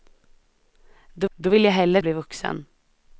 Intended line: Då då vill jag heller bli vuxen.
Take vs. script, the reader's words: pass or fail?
pass